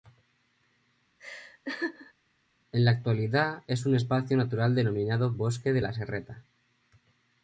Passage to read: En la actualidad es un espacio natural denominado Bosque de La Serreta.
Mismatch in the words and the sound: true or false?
true